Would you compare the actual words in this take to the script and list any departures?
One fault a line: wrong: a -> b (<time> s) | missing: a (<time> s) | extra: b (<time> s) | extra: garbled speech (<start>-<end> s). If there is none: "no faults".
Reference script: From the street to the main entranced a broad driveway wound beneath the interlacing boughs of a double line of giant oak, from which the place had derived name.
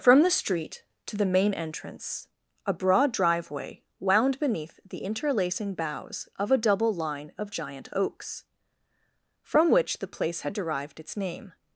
wrong: entranced -> entrance (1.5 s)
wrong: oak -> oaks (7.9 s)
extra: its (11.0 s)